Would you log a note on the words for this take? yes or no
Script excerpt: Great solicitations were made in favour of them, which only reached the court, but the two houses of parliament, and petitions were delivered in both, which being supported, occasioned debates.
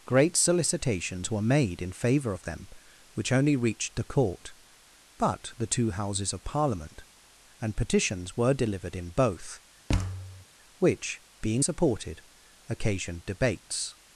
no